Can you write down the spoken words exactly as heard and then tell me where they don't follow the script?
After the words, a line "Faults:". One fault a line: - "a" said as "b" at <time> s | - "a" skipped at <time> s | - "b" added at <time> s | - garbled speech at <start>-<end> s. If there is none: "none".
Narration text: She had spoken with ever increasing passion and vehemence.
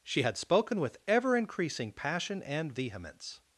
She had spoken with ever increasing passion and vehemence.
Faults:
none